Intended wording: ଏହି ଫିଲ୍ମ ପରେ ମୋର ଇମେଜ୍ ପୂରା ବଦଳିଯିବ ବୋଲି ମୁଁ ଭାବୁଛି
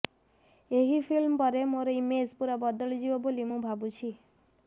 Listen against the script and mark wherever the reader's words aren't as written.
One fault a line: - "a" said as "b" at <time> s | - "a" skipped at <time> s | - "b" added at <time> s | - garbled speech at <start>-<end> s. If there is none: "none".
none